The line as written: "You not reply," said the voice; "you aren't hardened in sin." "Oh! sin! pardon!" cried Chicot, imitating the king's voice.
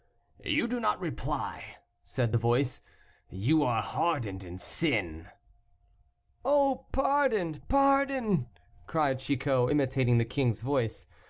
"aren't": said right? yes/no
no